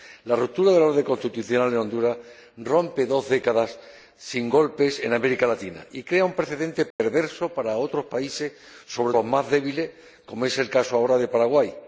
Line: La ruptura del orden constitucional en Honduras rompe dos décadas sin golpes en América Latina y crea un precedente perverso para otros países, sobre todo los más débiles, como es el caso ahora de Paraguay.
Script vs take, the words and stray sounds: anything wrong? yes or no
yes